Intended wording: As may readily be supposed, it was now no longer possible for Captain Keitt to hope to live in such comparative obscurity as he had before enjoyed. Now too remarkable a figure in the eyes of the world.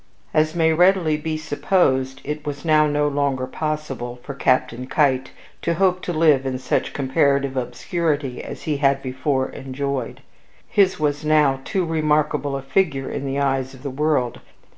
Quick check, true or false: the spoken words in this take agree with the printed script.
false